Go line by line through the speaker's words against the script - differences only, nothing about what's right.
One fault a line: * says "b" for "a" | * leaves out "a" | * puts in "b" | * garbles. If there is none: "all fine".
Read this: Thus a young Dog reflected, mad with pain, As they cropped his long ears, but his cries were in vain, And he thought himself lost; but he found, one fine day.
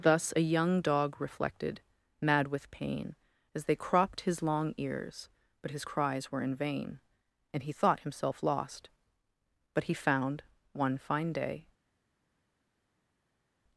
all fine